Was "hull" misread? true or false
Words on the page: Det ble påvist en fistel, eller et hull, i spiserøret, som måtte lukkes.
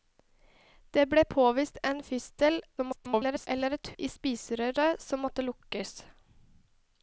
true